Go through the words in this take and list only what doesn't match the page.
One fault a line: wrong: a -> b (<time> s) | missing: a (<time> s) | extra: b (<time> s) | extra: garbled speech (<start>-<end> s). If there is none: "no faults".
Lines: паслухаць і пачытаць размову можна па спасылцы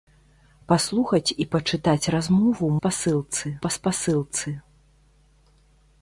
wrong: можна -> спасылцы (2.8 s)